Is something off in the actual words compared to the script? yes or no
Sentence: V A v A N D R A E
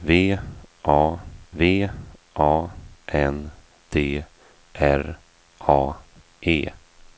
no